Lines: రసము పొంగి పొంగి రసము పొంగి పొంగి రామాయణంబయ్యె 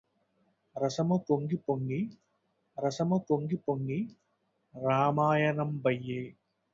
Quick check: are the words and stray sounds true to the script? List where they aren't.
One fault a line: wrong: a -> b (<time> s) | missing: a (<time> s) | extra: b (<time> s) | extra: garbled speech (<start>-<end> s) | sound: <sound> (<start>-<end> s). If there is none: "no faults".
no faults